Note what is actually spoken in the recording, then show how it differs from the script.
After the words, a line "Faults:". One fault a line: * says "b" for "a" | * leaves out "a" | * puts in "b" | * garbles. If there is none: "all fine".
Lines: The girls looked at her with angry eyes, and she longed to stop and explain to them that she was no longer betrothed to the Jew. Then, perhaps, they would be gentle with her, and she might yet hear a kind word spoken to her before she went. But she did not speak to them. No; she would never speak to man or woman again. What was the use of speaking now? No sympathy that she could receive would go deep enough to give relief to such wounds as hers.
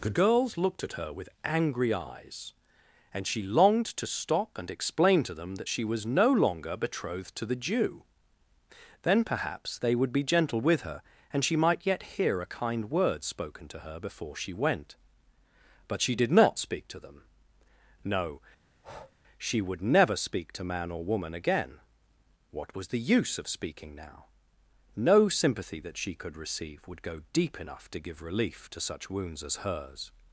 The girls looked at her with angry eyes, and she longed to stop and explain to them that she was no longer betrothed to the Jew. Then, perhaps, they would be gentle with her, and she might yet hear a kind word spoken to her before she went. But she did not speak to them. No; she would never speak to man or woman again. What was the use of speaking now? No sympathy that she could receive would go deep enough to give relief to such wounds as hers.
Faults:
all fine